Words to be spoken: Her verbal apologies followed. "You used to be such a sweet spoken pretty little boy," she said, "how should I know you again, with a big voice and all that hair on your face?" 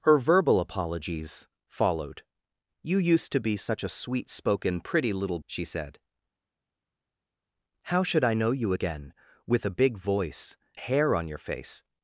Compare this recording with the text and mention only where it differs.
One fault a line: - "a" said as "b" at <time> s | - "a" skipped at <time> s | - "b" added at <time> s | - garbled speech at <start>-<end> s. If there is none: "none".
- "boy" skipped at 5.4 s
- "and all that" skipped at 10.6 s